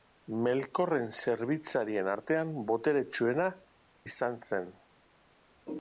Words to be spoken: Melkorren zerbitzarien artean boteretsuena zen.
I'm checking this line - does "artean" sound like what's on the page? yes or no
yes